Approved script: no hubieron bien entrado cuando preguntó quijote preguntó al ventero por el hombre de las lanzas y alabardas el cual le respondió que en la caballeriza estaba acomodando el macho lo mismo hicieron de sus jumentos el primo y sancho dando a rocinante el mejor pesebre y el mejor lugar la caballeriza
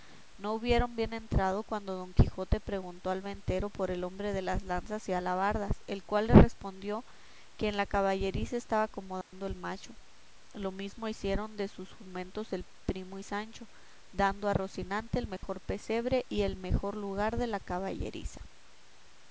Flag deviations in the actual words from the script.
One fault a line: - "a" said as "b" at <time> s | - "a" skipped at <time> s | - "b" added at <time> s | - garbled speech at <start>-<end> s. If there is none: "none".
- "preguntó" said as "don" at 1.9 s
- "de" added at 17.4 s